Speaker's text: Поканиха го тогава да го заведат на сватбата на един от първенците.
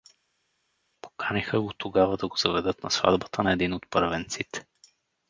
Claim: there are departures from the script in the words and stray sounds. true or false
false